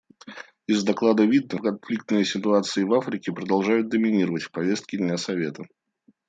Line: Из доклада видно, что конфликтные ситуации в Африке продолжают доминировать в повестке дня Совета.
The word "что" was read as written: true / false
false